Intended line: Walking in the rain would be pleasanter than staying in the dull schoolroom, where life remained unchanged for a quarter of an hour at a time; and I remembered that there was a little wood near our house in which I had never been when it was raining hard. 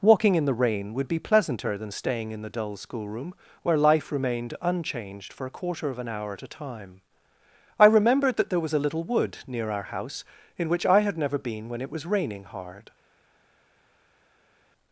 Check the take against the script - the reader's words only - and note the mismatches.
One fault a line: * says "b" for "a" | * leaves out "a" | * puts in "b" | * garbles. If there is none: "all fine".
* leaves out "and"